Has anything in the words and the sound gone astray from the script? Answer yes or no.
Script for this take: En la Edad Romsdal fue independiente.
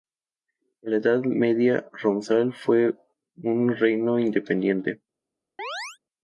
yes